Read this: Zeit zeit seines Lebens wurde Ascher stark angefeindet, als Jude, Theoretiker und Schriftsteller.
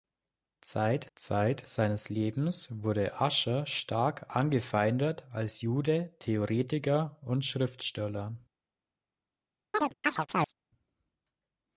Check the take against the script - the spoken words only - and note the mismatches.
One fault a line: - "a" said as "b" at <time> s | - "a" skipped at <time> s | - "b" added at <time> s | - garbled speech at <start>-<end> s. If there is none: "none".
none